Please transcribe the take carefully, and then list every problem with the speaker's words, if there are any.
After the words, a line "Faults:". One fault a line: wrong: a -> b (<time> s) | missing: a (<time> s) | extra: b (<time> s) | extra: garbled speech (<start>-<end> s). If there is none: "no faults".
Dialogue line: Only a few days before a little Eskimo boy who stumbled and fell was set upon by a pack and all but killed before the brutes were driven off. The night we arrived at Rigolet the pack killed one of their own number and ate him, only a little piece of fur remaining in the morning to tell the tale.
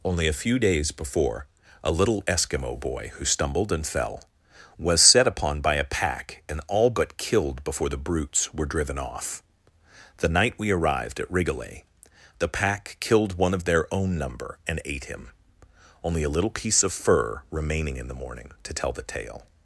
Only a few days before a little Eskimo boy who stumbled and fell was set upon by a pack and all but killed before the brutes were driven off. The night we arrived at Rigolet the pack killed one of their own number and ate him, only a little piece of fur remaining in the morning to tell the tale.
Faults:
no faults